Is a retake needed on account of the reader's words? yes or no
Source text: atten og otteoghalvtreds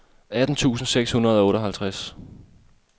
yes